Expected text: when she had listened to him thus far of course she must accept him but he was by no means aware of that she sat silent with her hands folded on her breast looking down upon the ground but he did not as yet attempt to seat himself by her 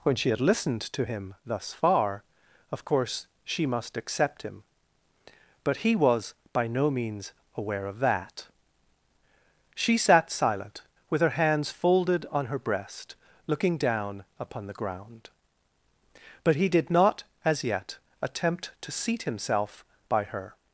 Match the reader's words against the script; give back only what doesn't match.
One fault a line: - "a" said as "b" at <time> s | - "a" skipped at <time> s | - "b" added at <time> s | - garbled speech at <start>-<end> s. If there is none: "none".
none